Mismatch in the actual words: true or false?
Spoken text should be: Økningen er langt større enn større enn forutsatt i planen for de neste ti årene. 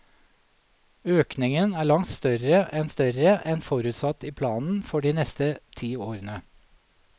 false